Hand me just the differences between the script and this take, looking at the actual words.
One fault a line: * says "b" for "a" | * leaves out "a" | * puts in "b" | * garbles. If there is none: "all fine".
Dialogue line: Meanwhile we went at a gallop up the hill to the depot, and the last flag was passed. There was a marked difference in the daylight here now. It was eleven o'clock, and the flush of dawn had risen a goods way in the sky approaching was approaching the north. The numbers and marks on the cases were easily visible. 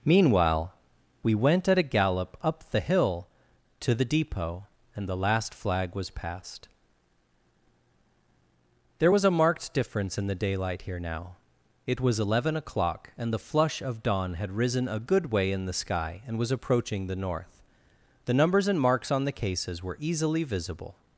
* says "good" for "goods"
* says "and" for "approaching"